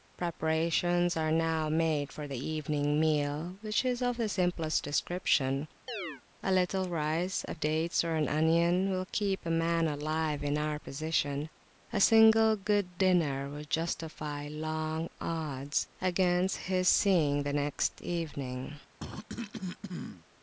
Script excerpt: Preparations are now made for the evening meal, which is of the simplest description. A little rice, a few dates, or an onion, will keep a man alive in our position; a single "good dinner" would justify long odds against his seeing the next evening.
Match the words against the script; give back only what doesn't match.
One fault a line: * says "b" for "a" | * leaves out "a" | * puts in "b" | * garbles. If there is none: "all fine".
* leaves out "few"